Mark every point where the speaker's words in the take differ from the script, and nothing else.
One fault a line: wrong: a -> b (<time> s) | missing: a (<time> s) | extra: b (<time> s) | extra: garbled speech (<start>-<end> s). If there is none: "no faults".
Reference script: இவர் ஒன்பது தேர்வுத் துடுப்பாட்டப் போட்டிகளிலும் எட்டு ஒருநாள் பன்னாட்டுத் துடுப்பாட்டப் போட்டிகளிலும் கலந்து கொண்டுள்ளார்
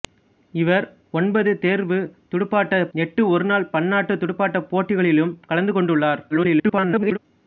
missing: போட்டிகளிலும் (2.9 s)
extra: garbled speech (6.3-7.2 s)